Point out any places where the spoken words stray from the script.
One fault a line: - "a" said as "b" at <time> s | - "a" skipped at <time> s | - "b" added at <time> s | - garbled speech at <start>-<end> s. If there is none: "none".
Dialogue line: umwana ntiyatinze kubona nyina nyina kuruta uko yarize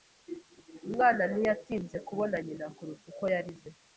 - "nyina" skipped at 2.7 s